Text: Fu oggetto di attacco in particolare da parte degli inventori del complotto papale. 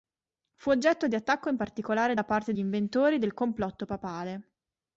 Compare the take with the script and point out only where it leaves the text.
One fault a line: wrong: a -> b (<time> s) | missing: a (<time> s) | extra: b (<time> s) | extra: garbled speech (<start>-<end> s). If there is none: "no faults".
missing: degli (2.5 s)